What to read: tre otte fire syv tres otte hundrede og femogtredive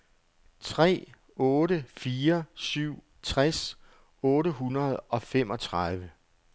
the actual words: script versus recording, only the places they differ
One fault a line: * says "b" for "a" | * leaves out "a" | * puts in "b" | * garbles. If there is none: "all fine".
all fine